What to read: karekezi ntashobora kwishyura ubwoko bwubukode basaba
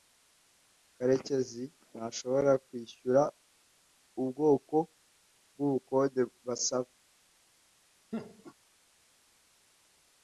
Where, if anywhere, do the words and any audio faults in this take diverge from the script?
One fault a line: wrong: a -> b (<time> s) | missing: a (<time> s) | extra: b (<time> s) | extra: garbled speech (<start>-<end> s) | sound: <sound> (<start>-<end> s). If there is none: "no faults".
sound: laugh (8.1-8.5 s)